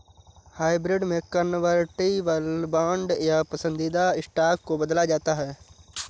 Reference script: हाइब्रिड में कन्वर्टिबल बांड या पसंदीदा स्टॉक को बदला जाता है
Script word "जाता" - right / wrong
right